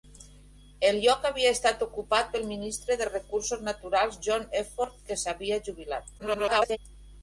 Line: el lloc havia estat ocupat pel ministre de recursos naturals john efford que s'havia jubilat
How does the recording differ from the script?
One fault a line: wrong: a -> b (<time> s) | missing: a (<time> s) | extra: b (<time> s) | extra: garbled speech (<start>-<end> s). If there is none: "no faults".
extra: garbled speech (6.2-6.8 s)